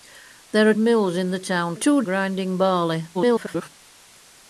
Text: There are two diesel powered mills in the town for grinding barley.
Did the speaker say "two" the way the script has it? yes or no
no